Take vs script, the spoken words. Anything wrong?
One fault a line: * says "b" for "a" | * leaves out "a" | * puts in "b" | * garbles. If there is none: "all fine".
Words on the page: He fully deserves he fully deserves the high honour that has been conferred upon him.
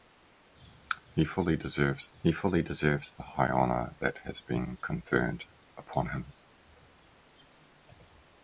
all fine